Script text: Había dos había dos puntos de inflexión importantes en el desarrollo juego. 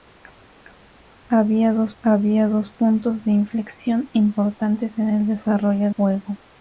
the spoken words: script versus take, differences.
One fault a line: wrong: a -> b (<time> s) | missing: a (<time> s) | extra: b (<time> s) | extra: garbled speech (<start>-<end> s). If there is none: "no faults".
no faults